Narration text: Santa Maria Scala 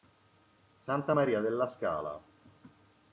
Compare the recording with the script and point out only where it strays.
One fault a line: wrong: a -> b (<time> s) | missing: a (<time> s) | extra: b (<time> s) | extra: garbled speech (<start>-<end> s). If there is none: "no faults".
extra: della (1.4 s)